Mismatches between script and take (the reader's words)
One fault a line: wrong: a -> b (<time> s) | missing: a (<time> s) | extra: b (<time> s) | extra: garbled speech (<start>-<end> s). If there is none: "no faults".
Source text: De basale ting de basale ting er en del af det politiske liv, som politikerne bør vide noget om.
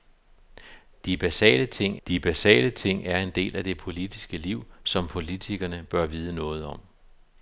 no faults